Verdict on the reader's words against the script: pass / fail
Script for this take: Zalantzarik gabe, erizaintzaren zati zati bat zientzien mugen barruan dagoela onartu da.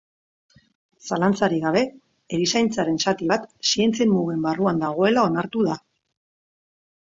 fail